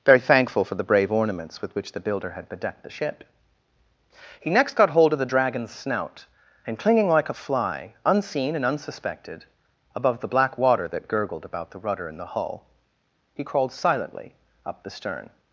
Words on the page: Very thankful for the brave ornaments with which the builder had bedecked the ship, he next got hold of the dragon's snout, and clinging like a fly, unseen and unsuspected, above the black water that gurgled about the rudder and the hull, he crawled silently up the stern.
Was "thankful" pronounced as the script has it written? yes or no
yes